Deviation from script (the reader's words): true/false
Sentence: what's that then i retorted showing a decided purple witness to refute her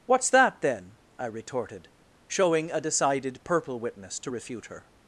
false